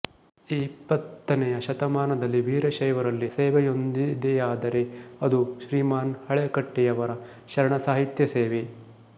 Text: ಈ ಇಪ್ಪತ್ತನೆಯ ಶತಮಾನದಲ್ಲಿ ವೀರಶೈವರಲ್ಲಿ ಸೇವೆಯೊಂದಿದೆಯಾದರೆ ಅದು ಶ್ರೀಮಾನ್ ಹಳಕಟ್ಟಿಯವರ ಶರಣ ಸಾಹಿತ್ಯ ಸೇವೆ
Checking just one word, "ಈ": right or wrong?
right